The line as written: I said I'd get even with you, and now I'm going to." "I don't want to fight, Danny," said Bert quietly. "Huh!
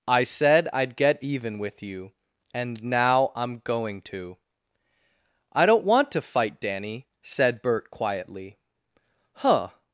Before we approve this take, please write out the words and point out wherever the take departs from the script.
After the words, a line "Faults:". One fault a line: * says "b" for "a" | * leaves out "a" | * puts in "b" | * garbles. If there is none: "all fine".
I said I'd get even with you, and now I'm going to." "I don't want to fight, Danny," said Bert quietly. "Huh!
Faults:
all fine